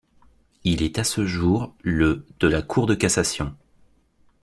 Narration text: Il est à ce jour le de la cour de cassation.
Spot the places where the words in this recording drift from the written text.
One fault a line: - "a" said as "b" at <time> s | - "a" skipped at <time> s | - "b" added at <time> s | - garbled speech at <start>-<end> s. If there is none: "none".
none